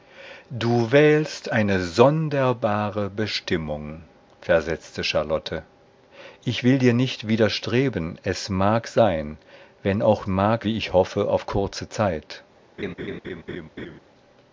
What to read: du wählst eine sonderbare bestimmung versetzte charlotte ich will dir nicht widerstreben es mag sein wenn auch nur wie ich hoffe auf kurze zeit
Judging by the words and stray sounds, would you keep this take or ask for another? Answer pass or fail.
fail